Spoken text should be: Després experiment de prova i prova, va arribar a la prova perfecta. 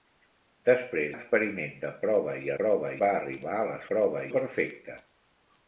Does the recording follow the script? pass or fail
pass